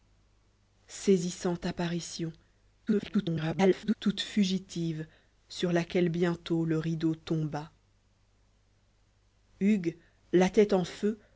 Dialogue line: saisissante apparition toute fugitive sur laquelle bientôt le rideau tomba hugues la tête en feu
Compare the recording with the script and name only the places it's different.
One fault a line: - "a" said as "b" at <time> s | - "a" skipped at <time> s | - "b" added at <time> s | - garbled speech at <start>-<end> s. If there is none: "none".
- garbled speech at 2.9-4.0 s